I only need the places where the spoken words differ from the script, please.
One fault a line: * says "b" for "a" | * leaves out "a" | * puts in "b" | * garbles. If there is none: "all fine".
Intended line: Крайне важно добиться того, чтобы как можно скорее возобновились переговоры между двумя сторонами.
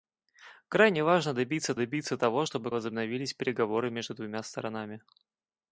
* puts in "добиться"
* leaves out "как можно скорее"